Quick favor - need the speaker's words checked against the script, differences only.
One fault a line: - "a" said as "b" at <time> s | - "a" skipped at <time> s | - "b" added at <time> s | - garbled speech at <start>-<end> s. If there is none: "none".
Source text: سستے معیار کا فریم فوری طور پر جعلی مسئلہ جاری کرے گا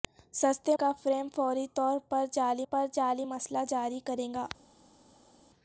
- "معیار" skipped at 0.8 s
- "پر جعلی" added at 2.7 s